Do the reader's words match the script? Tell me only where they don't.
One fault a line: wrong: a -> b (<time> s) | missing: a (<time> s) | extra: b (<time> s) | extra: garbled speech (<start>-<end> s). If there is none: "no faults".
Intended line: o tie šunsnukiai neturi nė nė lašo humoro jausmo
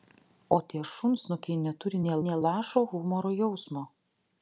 no faults